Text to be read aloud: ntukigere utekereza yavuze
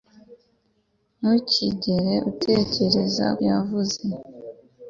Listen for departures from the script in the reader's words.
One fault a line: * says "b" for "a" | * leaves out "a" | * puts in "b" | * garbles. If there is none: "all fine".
all fine